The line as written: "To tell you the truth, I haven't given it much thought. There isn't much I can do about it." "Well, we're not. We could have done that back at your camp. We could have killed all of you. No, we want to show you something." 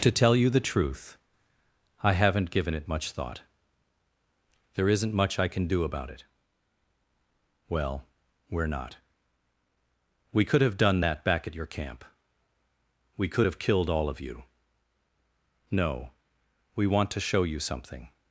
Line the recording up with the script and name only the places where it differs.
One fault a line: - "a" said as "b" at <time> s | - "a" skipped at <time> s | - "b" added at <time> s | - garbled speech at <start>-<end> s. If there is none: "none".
none